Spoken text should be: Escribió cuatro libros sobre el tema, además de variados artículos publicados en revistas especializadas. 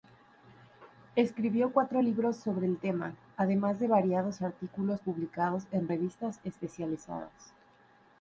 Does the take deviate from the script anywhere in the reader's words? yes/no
no